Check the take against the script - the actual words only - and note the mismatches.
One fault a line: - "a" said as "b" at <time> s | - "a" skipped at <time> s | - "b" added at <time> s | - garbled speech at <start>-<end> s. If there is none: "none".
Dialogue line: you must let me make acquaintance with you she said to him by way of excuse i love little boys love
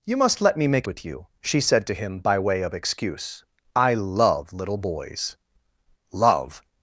- "acquaintance" skipped at 0.9 s